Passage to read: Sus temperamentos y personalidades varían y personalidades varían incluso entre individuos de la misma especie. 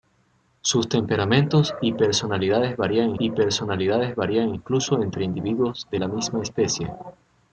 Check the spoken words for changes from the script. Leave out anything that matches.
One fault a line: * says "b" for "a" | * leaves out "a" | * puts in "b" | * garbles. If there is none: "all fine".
all fine